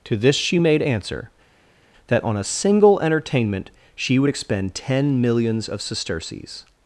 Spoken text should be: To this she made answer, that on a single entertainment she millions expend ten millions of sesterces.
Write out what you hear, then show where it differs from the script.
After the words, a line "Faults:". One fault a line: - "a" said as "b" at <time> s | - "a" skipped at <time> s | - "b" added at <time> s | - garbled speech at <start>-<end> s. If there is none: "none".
To this she made answer, that on a single entertainment she would expend ten millions of sesterces.
Faults:
- "millions" said as "would" at 4.2 s